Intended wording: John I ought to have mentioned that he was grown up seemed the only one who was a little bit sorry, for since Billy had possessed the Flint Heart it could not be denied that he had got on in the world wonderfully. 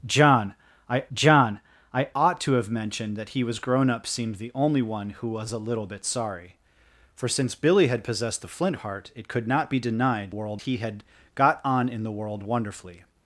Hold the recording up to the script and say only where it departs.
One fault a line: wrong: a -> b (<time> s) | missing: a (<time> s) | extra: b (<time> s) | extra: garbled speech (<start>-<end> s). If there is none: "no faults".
extra: john I (1.1 s)
wrong: that -> world (10.3 s)